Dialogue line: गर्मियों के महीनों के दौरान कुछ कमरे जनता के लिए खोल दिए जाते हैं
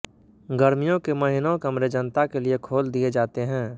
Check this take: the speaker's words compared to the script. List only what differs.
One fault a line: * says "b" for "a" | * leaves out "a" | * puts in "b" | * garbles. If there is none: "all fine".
* leaves out "के दौरान कुछ"